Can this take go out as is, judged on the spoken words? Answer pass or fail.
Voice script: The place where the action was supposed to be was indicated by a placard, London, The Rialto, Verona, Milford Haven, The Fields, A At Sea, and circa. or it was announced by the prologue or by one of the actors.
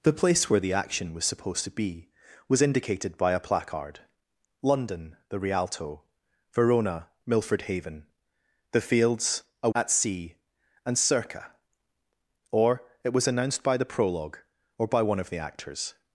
pass